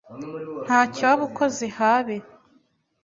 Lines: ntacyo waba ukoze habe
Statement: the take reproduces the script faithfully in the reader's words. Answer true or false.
true